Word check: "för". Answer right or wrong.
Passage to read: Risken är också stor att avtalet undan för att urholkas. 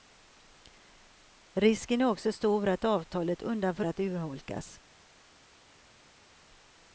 right